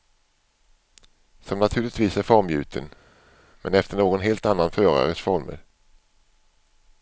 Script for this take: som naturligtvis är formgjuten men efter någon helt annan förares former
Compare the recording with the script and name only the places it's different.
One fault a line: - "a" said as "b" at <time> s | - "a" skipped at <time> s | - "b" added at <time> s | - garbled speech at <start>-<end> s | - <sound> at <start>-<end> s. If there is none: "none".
none